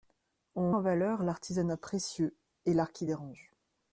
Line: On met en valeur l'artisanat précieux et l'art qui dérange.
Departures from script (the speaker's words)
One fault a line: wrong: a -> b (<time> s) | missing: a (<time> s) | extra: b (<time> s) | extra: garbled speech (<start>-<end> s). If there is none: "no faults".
missing: met (0.7 s)